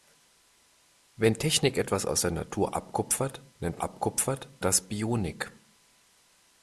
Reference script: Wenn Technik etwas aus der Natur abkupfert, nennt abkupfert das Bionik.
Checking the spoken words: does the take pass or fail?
pass